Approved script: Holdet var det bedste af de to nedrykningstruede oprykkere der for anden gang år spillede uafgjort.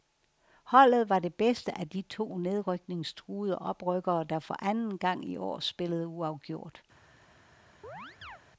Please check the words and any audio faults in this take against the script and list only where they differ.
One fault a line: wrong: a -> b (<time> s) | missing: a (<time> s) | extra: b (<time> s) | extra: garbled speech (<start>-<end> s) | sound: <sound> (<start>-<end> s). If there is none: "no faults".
extra: i (5.2 s)
sound: chirp (7.8-8.4 s)